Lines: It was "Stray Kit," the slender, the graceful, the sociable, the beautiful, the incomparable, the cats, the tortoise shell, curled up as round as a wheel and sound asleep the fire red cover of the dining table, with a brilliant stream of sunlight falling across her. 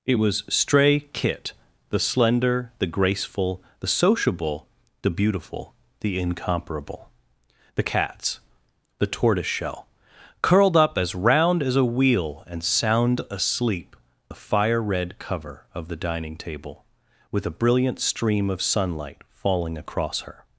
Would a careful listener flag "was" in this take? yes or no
no